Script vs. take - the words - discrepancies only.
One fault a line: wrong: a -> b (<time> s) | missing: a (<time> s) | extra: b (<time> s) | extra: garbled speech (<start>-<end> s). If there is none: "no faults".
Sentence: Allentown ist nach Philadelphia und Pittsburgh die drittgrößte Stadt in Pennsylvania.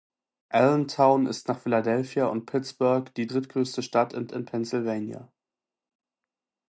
extra: in (4.3 s)